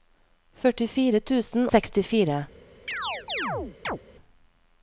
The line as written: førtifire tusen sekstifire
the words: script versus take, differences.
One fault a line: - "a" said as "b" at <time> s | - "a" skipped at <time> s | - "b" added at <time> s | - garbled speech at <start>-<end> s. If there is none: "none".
none